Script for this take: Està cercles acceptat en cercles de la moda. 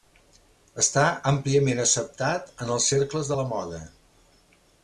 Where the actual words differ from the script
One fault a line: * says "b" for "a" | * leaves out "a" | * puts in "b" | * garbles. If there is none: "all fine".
* says "àmpliament" for "cercles"
* puts in "els"